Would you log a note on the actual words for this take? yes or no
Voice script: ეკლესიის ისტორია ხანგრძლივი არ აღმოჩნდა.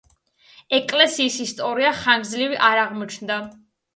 no